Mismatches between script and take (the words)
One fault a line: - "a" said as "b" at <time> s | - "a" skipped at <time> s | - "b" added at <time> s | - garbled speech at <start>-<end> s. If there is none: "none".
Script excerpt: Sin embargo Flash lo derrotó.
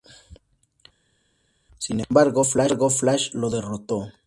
none